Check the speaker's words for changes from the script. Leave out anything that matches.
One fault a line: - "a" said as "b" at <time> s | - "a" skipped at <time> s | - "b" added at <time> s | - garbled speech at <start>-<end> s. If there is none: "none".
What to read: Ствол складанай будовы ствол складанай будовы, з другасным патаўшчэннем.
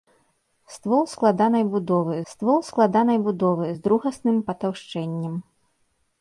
none